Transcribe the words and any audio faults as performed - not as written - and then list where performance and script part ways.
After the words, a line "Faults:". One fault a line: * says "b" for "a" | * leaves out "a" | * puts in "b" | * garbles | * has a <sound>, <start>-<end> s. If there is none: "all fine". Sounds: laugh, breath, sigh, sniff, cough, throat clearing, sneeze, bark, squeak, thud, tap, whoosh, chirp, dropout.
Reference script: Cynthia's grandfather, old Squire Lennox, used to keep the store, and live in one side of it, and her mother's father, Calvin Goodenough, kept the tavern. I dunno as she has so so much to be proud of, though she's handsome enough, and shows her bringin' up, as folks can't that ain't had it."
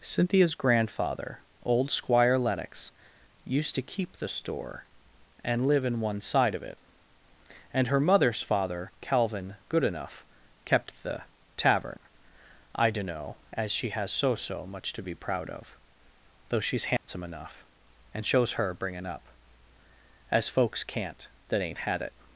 Cynthia's grandfather, old Squire Lennox, used to keep the store, and live in one side of it, and her mother's father, Calvin Goodenough, kept the tavern. I dunno as she has so so much to be proud of, though she's handsome enough, and shows her bringin' up, as folks can't that ain't had it."
Faults:
* has a dropout, 17.0-17.1 s